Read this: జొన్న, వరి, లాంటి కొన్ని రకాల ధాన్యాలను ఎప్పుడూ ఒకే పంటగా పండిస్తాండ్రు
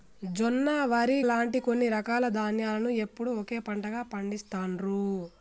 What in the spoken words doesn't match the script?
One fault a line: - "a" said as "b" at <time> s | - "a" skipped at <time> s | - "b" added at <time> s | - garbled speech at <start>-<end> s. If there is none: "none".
none